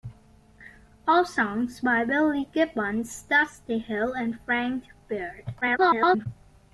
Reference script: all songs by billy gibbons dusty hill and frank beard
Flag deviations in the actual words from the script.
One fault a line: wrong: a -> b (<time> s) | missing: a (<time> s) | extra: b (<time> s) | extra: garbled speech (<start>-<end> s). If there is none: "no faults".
extra: garbled speech (5.6-6.3 s)